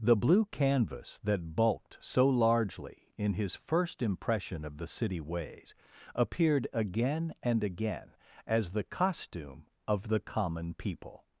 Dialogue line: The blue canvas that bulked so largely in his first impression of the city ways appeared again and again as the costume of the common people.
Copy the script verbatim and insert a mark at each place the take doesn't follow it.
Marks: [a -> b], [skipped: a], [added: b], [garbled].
The blue canvas that bulked so largely in his first impression of the city ways appeared again and again as the costume of the common people.